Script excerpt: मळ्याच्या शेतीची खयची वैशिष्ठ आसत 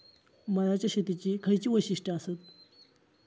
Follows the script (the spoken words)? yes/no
yes